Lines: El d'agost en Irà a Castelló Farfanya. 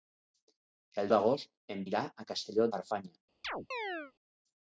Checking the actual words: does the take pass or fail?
pass